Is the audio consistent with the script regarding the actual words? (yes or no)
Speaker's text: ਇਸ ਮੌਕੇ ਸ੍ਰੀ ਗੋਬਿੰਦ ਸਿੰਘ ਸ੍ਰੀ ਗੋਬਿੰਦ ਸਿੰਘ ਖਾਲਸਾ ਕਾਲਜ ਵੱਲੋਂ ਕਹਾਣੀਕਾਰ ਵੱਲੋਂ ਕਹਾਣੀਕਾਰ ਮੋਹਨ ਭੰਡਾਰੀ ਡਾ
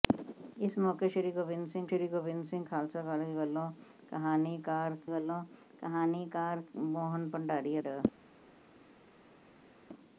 yes